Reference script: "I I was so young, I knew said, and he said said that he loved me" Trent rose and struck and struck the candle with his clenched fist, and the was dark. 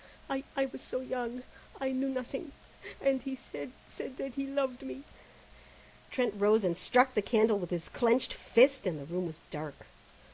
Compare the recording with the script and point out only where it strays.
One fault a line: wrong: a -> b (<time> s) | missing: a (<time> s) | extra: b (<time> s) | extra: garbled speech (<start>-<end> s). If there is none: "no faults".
wrong: said -> nothing (2.1 s)
missing: and struck (7.1 s)
extra: room (9.0 s)